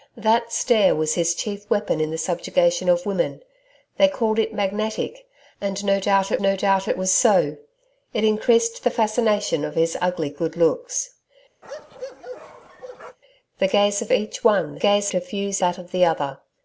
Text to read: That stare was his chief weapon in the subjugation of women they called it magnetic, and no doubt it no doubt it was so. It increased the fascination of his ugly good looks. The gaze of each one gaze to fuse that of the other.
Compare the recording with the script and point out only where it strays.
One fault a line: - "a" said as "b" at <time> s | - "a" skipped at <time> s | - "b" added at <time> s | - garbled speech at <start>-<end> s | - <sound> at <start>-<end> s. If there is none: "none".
- bark at 11.6-13.2 s